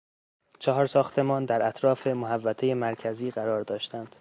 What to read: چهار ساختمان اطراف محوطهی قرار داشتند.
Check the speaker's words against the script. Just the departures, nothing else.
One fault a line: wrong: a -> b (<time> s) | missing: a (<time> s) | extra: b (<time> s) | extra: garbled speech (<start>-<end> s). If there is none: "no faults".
extra: در (1.4 s)
extra: مرکزی (2.7 s)